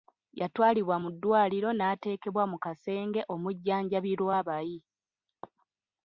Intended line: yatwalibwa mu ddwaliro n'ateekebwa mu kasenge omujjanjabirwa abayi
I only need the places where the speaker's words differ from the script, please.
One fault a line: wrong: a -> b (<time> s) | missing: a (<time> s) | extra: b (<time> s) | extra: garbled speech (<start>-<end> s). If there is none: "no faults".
no faults